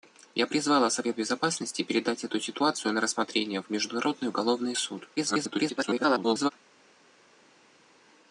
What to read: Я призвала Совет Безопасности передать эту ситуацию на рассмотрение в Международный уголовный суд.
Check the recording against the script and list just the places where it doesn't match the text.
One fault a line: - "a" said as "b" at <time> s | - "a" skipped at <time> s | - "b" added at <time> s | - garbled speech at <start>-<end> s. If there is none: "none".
- garbled speech at 5.2-6.5 s